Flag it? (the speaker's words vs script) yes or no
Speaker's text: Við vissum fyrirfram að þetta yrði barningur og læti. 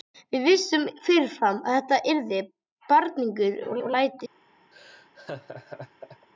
yes